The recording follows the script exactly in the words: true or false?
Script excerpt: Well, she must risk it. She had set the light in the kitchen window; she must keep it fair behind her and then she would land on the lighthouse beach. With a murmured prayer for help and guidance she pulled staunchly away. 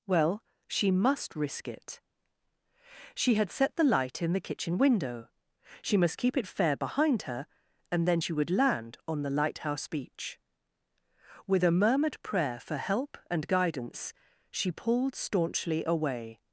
true